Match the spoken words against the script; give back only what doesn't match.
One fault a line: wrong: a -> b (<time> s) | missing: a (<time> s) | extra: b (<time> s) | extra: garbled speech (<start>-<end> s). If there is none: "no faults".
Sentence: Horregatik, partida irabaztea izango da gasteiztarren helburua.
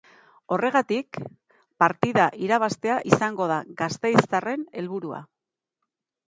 no faults